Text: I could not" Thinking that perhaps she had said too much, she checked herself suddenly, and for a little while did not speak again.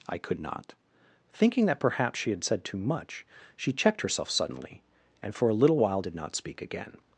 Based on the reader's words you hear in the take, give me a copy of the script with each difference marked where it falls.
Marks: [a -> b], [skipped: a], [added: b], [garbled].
I could not" Thinking that perhaps she had said too much, she checked herself suddenly, and for a little while did not speak again.